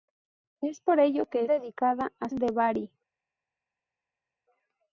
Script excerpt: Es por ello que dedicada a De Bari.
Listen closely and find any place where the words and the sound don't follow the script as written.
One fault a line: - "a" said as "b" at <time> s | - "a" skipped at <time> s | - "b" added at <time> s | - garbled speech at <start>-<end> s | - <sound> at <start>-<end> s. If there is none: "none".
none